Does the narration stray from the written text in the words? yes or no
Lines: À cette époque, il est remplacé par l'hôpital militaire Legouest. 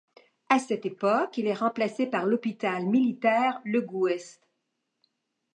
no